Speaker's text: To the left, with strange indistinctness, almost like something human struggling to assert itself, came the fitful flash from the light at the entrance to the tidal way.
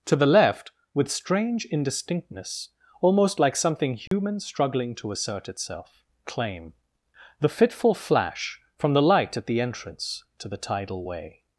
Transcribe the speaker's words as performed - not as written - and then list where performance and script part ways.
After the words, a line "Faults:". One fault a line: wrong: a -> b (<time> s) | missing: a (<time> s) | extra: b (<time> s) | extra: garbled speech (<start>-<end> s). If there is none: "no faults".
To the left, with strange indistinctness, almost like something human struggling to assert itself, claim the fitful flash from the light at the entrance to the tidal way.
Faults:
wrong: came -> claim (6.2 s)